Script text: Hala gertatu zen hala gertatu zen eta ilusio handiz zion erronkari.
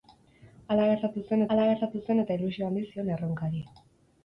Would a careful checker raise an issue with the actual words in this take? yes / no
no